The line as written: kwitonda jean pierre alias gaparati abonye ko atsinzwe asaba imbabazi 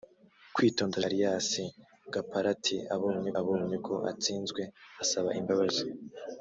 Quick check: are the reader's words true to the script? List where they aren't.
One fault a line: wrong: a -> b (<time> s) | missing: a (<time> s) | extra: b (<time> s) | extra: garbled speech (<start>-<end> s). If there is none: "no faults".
missing: jean pierre (1.0 s)
extra: abonye (3.4 s)